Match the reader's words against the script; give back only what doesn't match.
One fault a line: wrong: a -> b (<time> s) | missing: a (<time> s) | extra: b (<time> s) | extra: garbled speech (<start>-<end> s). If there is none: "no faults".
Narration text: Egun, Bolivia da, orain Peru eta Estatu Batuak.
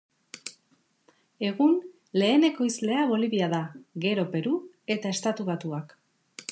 extra: lehen ekoizlea (2.2 s)
wrong: orain -> gero (4.1 s)